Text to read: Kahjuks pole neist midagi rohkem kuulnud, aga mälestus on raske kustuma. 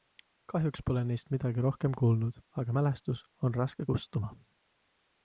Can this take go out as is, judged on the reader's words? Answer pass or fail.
pass